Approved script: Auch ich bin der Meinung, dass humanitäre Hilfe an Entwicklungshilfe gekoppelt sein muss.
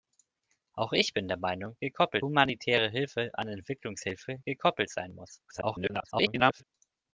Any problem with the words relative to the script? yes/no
yes